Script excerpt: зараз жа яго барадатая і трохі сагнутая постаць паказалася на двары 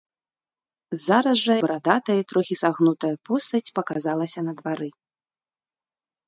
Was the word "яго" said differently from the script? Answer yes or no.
yes